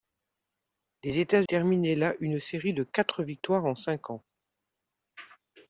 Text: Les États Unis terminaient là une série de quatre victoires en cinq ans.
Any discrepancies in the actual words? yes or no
yes